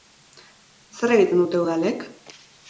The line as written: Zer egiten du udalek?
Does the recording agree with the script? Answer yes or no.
no